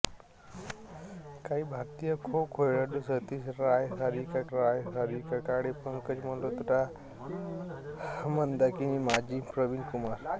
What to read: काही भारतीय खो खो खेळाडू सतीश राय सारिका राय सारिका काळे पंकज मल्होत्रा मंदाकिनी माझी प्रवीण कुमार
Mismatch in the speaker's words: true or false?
false